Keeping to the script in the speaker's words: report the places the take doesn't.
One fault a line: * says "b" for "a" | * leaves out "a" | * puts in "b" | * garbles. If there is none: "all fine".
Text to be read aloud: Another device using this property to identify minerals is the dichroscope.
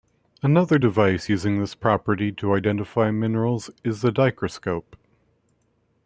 all fine